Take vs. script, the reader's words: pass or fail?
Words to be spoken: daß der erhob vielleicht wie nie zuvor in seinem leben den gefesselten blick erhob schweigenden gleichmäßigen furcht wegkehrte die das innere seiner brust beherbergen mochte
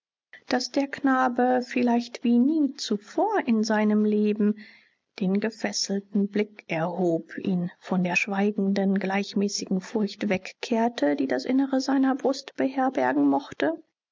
fail